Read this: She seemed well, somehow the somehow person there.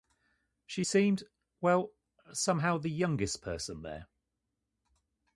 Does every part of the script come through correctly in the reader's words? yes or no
no